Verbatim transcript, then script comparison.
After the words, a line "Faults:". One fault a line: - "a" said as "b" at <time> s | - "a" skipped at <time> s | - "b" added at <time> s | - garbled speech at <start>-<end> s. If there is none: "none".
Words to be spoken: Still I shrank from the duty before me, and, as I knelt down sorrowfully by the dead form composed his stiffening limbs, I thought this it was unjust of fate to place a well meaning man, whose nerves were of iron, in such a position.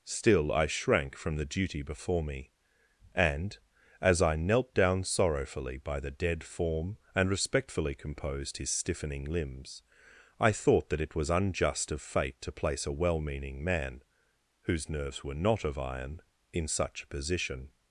Still I shrank from the duty before me, and, as I knelt down sorrowfully by the dead form and respectfully composed his stiffening limbs, I thought that it was unjust of fate to place a well meaning man, whose nerves were not of iron, in such a position.
Faults:
- "and respectfully" added at 7.1 s
- "this" said as "that" at 10.9 s
- "not" added at 15.3 s